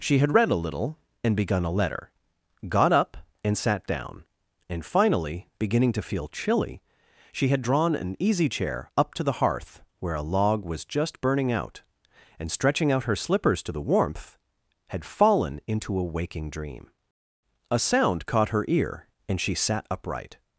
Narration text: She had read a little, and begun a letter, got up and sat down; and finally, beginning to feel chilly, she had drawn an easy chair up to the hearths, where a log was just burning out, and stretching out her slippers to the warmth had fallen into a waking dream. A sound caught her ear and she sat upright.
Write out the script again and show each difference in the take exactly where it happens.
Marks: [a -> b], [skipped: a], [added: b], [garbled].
She had read a little, and begun a letter, got up and sat down; and finally, beginning to feel chilly, she had drawn an easy chair up to the [hearths, -> hearth] where a log was just burning out, and stretching out her slippers to the warmth had fallen into a waking dream. A sound caught her ear and she sat upright.